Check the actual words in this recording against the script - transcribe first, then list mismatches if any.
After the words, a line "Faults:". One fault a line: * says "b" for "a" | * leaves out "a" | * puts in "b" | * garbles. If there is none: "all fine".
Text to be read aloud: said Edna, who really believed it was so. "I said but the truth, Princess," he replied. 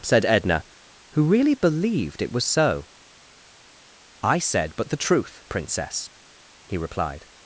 said Edna, who really believed it was so. "I said but the truth, Princess," he replied.
Faults:
all fine